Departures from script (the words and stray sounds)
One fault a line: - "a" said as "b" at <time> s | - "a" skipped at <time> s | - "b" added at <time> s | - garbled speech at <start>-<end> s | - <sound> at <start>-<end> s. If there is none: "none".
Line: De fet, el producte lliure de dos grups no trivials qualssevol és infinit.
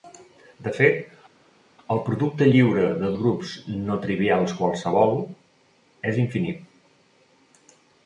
- "dos" skipped at 3.1 s